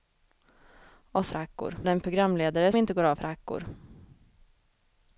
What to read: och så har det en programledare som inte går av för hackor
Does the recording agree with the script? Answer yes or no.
no